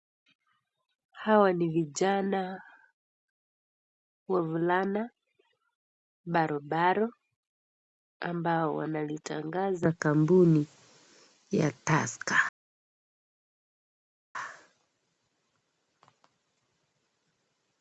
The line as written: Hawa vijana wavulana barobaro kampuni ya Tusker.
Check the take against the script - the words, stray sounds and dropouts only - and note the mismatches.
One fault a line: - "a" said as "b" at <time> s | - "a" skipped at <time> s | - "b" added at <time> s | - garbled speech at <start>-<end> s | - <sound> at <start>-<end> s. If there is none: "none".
- "ni" added at 1.5 s
- "ambao wanalitangaza" added at 8.2 s